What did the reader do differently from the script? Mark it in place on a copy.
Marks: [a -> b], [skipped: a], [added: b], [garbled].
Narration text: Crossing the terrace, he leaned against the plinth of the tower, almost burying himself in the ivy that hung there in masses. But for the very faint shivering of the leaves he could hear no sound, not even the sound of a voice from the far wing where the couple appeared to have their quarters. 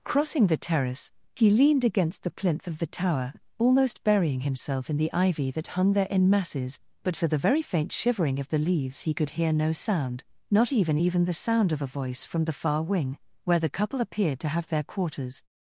Crossing the terrace, he leaned against the plinth of the tower, almost burying himself in the ivy that hung there in masses. But for the very faint shivering of the leaves he could hear no sound, not even [added: even] the sound of a voice from the far wing where the couple appeared to have their quarters.